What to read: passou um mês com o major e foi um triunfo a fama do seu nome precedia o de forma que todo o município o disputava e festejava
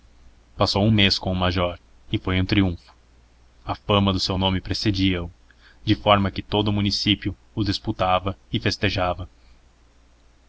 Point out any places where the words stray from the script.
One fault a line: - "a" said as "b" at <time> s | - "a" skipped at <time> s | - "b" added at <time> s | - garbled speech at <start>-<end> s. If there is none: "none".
none